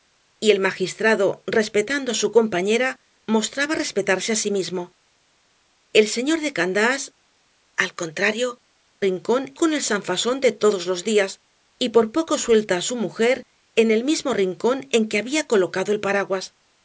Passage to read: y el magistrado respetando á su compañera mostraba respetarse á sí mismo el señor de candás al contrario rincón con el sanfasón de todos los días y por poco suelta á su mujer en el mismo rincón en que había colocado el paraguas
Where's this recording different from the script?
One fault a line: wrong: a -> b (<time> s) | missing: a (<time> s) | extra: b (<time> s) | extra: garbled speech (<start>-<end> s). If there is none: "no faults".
no faults